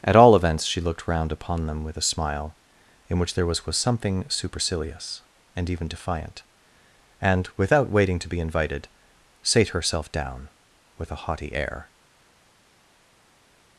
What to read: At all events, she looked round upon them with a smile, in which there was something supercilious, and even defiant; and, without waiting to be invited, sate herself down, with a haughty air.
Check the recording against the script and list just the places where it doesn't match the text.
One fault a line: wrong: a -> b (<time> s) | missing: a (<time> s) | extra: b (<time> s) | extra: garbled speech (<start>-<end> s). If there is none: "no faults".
extra: was (3.6 s)